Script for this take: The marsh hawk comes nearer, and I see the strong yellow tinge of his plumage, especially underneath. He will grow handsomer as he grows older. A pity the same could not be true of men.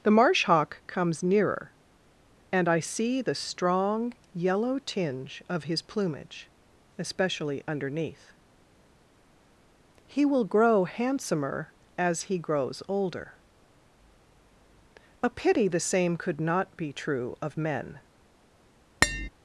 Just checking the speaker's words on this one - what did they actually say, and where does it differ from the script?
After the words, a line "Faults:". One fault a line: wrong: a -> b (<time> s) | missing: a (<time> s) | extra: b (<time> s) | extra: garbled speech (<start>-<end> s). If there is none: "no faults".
The marsh hawk comes nearer, and I see the strong yellow tinge of his plumage, especially underneath. He will grow handsomer as he grows older. A pity the same could not be true of men.
Faults:
no faults